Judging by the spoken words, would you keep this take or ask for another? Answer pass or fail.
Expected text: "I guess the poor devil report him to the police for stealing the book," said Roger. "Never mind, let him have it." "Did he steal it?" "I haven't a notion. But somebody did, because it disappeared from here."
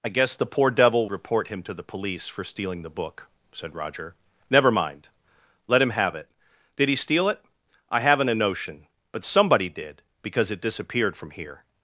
pass